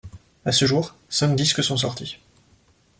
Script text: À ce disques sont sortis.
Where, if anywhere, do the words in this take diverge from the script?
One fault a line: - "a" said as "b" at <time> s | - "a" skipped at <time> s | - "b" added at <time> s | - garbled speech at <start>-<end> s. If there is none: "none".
- "jour cinq" added at 0.6 s